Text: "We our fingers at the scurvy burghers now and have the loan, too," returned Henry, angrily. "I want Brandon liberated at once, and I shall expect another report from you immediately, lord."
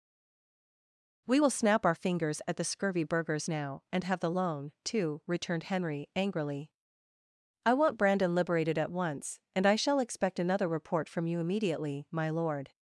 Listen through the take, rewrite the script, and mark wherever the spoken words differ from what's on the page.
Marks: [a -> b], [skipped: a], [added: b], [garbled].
"We [added: will snap] our fingers at the scurvy burghers now and have the loan, too," returned Henry, angrily. "I want Brandon liberated at once, and I shall expect another report from you immediately, [added: my] lord."